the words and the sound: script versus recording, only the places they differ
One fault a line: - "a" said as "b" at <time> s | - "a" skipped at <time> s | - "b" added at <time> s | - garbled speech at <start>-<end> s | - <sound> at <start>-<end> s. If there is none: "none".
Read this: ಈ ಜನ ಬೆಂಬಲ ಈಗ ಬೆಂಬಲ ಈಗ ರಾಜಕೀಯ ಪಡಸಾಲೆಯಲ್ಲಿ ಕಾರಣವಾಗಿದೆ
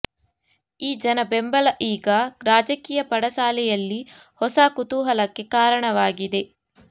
- "ಬೆಂಬಲ ಈಗ ರಾಜಕೀಯ ಪಡಸಾಲೆಯಲ್ಲಿ" said as "ರಾಜಕೀಯ ಪಡಸಾಲೆಯಲ್ಲಿ ಹೊಸ ಕುತೂಹಲಕ್ಕೆ" at 2.4 s